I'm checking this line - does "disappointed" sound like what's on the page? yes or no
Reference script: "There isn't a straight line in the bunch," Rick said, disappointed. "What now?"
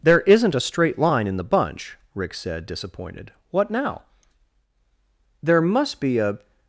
yes